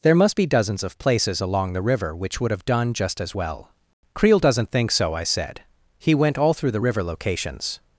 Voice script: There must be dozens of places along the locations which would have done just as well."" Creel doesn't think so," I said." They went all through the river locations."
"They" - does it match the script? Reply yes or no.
no